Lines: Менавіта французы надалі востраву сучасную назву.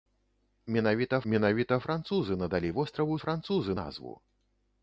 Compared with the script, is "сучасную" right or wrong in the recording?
wrong